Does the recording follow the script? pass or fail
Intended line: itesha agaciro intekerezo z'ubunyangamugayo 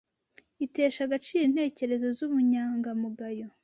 pass